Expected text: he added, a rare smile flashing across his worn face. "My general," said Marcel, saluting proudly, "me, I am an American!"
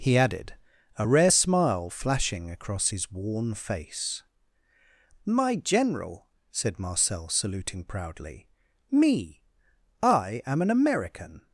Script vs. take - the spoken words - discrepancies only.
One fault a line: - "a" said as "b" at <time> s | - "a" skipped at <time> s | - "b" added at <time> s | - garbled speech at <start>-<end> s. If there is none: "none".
none